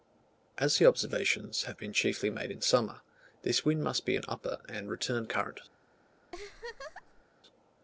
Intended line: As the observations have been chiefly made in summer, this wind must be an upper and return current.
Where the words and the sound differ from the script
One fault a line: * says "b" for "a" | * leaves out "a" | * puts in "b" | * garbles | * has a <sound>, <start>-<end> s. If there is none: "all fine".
* has a laugh, 6.3-7.2 s